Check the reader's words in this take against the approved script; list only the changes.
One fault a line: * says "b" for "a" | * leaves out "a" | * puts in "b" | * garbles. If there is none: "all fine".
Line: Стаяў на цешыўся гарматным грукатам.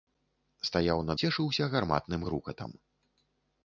all fine